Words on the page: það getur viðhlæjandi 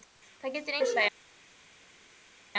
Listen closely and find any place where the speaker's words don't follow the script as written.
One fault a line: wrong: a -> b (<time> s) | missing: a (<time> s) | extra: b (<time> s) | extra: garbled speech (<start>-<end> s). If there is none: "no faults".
no faults